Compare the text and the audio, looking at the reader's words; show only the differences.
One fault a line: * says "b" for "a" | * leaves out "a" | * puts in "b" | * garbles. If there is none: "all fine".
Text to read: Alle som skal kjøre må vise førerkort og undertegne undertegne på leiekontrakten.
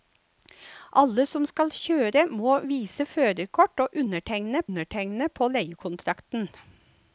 all fine